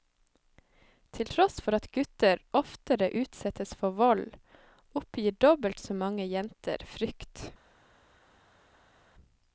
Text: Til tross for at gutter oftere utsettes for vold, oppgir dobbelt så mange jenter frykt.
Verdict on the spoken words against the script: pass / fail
pass